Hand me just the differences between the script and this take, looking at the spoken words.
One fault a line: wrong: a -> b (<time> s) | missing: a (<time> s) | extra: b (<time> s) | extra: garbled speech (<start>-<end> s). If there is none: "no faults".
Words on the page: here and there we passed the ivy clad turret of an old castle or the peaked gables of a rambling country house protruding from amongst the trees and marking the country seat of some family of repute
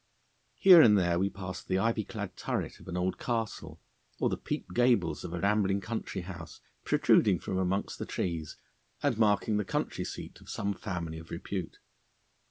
no faults